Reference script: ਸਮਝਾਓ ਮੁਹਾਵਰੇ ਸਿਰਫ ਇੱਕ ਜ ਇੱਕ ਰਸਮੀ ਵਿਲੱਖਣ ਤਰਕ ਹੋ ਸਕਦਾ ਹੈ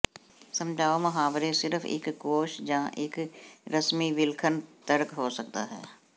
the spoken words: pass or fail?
fail